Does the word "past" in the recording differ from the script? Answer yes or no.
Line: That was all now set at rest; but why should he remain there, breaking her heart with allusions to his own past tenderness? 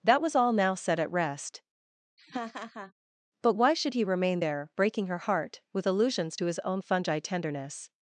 yes